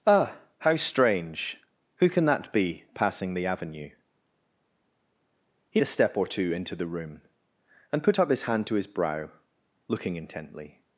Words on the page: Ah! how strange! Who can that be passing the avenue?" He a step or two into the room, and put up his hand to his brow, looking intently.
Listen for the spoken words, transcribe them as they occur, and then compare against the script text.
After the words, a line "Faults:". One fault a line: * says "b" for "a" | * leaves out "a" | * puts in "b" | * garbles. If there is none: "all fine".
Ah! how strange! Who can that be passing the avenue?" He a step or two into the room, and put up his hand to his brow, looking intently.
Faults:
all fine